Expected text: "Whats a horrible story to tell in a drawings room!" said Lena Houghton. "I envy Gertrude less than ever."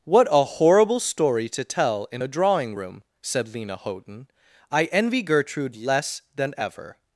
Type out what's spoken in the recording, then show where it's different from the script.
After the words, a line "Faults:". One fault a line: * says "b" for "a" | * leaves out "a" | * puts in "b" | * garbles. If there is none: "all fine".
"What a horrible story to tell in a drawing room!" said Lena Houghton. "I envy Gertrude less than ever."
Faults:
* says "What" for "Whats"
* says "drawing" for "drawings"